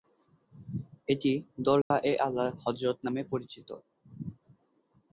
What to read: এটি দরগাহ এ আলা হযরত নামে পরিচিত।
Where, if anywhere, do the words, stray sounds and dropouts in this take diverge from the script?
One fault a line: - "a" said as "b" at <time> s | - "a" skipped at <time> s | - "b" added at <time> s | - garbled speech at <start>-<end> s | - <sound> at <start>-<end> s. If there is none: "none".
- dropout at 1.8-1.9 s